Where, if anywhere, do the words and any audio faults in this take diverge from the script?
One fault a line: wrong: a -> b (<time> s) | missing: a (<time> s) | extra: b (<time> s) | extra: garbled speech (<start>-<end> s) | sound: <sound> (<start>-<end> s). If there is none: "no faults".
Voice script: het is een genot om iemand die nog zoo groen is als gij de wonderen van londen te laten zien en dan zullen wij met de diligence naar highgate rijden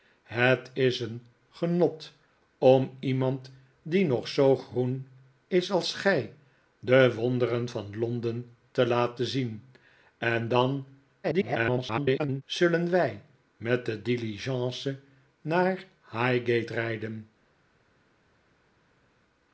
extra: garbled speech (11.2-12.4 s)